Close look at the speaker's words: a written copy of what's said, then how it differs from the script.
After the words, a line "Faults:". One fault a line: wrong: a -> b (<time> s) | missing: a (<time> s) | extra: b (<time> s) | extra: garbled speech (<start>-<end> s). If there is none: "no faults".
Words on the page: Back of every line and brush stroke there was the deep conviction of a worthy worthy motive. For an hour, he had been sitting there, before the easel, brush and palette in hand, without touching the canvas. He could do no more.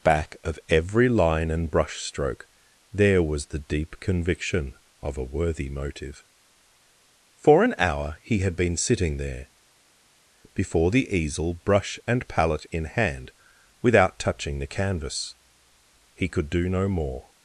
Back of every line and brush stroke there was the deep conviction of a worthy motive. For an hour, he had been sitting there, before the easel, brush and palette in hand, without touching the canvas. He could do no more.
Faults:
missing: worthy (5.7 s)